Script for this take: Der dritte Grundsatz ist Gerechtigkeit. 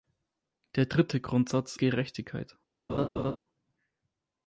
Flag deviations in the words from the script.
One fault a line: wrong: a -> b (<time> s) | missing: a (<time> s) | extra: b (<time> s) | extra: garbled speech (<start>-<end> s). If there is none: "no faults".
missing: ist (1.8 s)